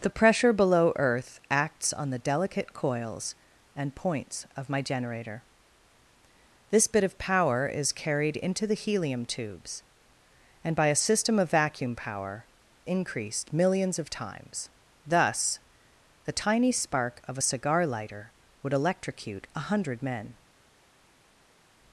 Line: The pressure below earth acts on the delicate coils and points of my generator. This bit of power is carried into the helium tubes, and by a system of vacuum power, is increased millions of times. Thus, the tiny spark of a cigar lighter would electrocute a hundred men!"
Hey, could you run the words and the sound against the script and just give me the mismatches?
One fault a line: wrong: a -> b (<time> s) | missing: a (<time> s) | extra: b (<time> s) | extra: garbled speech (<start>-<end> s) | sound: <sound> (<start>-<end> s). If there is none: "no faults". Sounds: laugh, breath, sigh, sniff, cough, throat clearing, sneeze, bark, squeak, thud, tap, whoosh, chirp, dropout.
missing: is (12.5 s)